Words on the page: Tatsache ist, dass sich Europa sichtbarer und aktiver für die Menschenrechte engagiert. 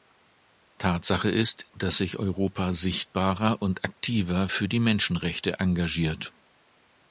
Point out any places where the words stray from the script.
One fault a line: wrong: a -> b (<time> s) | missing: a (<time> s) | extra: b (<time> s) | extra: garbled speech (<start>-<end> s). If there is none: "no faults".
no faults